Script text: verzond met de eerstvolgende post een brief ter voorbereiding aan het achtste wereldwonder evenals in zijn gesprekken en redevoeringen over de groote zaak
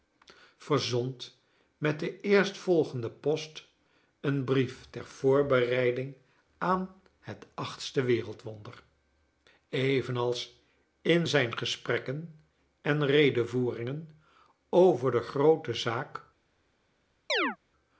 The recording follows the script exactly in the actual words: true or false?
true